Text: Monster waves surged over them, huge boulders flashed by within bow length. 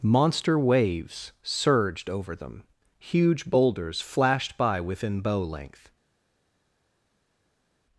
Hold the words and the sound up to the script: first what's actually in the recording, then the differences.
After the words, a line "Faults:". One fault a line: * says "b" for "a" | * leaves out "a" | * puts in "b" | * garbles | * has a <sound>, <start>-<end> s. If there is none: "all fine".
Monster waves surged over them, huge boulders flashed by within bow length.
Faults:
all fine